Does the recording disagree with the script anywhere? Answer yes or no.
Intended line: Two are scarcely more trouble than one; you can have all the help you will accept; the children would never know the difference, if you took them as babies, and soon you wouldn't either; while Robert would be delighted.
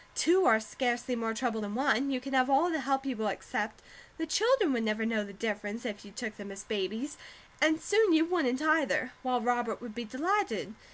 no